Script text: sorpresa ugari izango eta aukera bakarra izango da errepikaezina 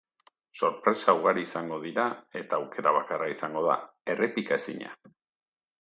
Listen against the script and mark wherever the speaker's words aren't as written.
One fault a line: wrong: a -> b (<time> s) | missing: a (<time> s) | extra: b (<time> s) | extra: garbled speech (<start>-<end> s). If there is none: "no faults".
extra: dira (1.9 s)